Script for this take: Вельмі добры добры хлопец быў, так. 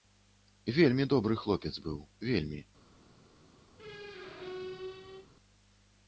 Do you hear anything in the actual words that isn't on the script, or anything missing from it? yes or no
yes